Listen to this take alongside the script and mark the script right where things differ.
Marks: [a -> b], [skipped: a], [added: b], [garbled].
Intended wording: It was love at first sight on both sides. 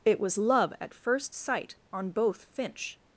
It was love at first sight on both [sides. -> finch]